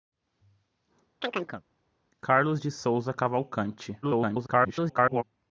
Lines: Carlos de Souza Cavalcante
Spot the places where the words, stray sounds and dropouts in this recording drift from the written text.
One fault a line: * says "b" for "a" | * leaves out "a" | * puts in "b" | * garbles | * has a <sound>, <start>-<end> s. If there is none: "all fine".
* has a chirp, 1.2-1.6 s
* garbles